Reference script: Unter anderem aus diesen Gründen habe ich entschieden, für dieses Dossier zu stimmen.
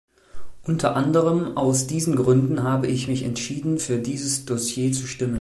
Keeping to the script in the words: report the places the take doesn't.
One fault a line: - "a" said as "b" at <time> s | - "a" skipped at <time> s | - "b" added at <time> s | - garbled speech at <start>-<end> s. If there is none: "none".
- "mich" added at 3.1 s